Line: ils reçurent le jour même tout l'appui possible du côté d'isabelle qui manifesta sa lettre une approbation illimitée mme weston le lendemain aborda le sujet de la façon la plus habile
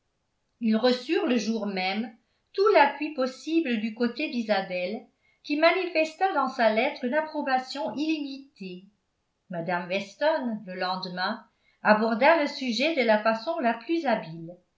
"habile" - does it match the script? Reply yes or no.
yes